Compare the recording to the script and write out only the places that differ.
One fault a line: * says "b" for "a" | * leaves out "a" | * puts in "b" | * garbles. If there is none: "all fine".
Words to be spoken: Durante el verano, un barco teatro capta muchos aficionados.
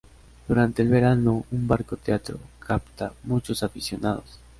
all fine